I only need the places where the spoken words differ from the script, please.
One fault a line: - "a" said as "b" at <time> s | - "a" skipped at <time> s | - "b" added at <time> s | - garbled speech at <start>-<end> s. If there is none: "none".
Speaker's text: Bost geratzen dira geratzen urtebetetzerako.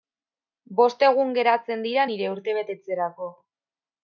- "egun" added at 1.1 s
- "geratzen" said as "nire" at 2.1 s